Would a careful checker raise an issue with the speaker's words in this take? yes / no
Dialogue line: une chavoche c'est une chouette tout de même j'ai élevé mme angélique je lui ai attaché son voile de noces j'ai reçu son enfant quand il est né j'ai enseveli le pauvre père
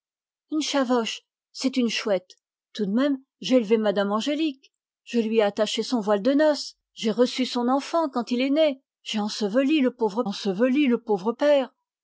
yes